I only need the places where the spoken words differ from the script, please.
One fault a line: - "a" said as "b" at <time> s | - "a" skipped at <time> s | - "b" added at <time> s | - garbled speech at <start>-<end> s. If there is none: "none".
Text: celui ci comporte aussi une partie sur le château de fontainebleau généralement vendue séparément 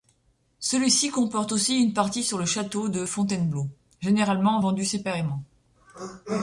none